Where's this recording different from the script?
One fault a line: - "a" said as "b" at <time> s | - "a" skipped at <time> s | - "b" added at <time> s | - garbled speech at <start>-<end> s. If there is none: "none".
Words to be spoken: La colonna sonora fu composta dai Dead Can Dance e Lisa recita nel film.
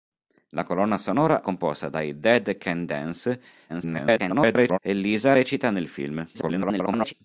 - "fu" skipped at 1.4 s
- garbled speech at 3.7-4.8 s
- garbled speech at 6.3-7.1 s